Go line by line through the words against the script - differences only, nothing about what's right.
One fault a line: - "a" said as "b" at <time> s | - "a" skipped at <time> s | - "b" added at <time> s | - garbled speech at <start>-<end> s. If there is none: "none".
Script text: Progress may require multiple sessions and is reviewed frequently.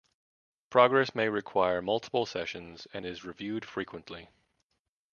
none